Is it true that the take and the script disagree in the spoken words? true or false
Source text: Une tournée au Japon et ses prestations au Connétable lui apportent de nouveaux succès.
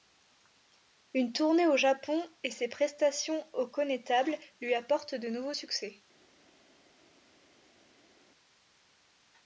false